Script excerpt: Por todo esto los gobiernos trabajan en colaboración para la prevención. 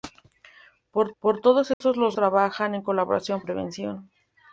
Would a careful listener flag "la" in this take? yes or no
yes